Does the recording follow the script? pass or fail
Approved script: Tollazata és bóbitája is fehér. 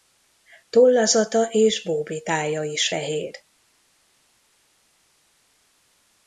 pass